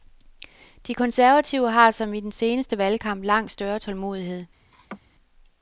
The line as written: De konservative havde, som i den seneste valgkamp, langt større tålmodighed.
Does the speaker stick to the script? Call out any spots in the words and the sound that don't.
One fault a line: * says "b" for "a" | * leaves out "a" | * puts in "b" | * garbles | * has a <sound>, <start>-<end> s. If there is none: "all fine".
* says "har" for "havde"
* has a laugh, 4.7-5.0 s